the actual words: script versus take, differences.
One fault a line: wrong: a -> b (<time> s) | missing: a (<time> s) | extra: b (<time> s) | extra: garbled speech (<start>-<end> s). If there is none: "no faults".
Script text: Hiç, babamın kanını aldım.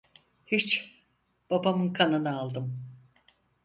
no faults